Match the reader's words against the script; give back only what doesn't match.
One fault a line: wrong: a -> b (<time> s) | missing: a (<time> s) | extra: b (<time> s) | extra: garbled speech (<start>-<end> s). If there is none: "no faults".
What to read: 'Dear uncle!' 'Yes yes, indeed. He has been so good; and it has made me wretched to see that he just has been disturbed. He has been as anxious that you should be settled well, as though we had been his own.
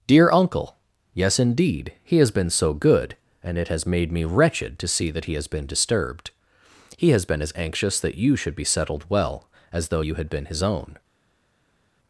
missing: yes (1.4 s)
missing: just (5.3 s)
wrong: we -> you (10.0 s)